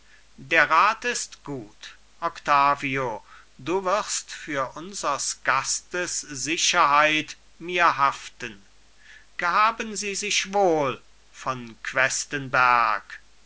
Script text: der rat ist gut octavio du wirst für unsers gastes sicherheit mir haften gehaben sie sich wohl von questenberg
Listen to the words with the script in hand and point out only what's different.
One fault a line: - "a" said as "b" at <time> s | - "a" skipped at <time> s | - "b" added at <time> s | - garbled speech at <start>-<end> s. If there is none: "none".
none